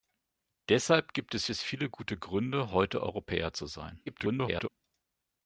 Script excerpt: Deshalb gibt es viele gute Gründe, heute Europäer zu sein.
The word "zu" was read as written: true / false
true